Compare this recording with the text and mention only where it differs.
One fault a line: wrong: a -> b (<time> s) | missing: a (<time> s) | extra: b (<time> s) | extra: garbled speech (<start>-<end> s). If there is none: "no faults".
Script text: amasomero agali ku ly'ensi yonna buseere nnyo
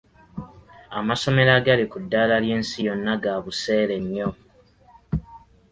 extra: ddaala (2.0 s)
extra: ga (3.2 s)